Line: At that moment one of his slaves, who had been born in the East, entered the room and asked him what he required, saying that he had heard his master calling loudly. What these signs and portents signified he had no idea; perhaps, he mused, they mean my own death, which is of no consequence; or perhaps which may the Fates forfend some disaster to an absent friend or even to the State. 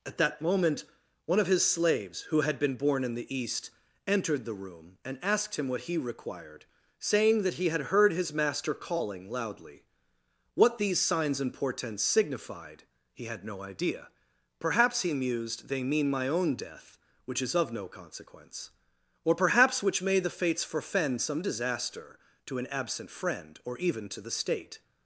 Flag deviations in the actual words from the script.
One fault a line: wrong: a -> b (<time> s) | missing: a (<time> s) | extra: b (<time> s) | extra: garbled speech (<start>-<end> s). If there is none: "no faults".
no faults